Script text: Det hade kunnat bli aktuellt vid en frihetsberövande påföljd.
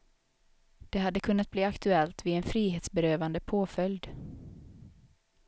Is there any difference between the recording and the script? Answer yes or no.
no